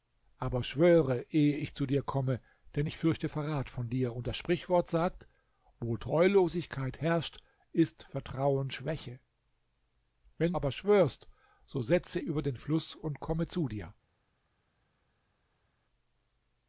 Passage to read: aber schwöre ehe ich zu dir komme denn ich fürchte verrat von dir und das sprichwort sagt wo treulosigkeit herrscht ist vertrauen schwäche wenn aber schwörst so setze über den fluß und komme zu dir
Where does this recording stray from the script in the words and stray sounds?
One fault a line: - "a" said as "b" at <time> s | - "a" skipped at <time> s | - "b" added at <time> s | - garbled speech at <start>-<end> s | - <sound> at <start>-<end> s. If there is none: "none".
none